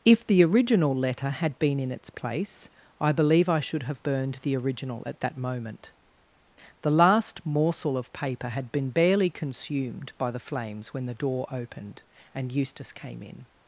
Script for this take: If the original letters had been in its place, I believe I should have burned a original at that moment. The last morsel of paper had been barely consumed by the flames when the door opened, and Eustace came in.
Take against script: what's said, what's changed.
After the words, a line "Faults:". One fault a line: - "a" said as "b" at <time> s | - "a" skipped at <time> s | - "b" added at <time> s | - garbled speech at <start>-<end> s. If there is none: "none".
If the original letter had been in its place, I believe I should have burned the original at that moment. The last morsel of paper had been barely consumed by the flames when the door opened, and Eustace came in.
Faults:
- "letters" said as "letter" at 0.9 s
- "a" said as "the" at 4.4 s